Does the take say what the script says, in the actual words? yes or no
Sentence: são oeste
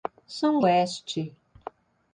yes